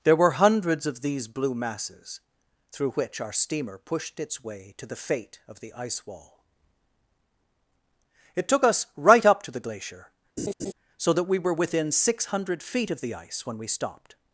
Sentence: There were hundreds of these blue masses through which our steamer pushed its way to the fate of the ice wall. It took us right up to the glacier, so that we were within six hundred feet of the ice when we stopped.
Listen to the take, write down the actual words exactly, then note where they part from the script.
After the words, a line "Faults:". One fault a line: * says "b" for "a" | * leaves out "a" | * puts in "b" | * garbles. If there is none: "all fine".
There were hundreds of these blue masses through which our steamer pushed its way to the fate of the ice wall. It took us right up to the glacier, so that we were within six hundred feet of the ice when we stopped.
Faults:
all fine